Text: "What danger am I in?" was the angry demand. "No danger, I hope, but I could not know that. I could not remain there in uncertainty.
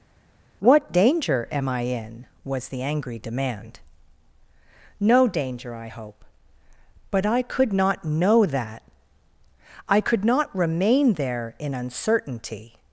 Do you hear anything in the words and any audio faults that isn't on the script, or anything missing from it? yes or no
no